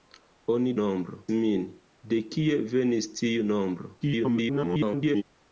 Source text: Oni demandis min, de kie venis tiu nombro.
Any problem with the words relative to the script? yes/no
yes